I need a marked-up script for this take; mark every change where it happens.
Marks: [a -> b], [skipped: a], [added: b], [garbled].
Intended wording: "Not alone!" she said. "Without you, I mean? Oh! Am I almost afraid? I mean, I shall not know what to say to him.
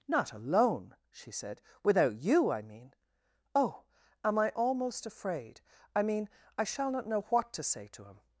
"Not alone!" she said. "Without you, I mean? Oh! Am I almost afraid? I mean, I shall not know what to say to him.